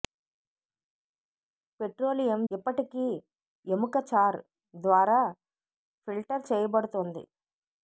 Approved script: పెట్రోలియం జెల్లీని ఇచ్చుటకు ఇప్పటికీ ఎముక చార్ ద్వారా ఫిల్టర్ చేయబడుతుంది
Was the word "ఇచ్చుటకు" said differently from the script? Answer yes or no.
yes